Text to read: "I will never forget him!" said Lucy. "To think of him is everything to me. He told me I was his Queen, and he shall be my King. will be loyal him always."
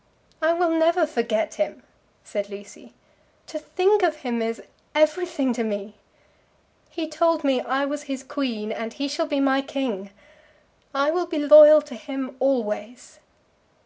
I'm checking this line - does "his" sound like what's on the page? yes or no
yes